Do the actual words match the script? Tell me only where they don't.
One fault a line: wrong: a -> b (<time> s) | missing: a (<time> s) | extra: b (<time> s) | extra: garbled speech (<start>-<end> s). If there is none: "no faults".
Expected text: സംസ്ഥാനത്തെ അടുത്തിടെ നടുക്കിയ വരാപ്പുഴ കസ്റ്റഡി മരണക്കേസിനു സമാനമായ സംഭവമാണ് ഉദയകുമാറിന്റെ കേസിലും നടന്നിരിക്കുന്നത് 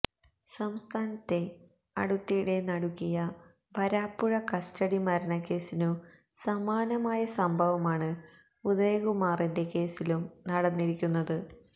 no faults